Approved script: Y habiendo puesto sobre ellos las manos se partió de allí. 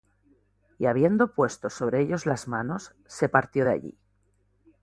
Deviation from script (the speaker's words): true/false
false